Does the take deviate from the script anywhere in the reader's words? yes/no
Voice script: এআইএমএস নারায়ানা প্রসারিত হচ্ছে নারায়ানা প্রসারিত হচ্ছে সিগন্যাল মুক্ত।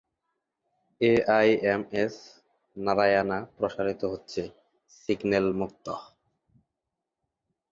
yes